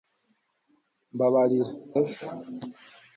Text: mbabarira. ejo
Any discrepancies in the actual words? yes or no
no